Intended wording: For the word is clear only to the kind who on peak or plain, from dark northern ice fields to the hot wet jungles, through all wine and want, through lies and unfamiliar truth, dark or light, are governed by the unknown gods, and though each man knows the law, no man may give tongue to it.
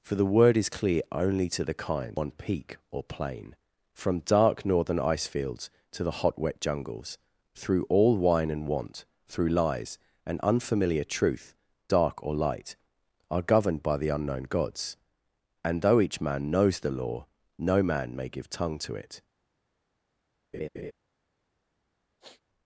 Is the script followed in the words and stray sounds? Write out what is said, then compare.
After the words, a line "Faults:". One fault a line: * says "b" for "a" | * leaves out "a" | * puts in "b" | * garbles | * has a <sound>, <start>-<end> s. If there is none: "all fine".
For the word is clear only to the kind on peak or plain, from dark northern ice fields to the hot wet jungles, through all wine and want, through lies and unfamiliar truth, dark or light, are governed by the unknown gods, and though each man knows the law, no man may give tongue to it.
Faults:
* leaves out "who"
* has a laugh, 20.5-20.9 s
* has a sniff, 22.2-22.4 s